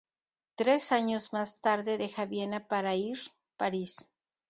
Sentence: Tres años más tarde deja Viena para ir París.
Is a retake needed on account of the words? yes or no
no